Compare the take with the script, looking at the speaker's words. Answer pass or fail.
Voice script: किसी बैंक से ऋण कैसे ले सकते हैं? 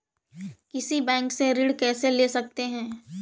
pass